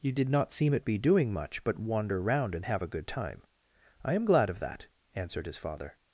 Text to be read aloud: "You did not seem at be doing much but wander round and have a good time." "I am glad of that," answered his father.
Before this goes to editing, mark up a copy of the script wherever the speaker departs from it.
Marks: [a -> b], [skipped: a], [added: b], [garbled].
"You did not seem at be doing much but wander round and have a good time." "I am glad of that," answered his father.